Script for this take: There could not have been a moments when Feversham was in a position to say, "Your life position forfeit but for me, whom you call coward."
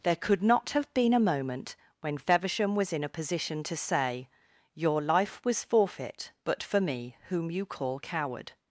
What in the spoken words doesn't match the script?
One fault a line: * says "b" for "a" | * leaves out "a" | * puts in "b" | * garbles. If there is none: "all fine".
* says "moment" for "moments"
* says "was" for "position"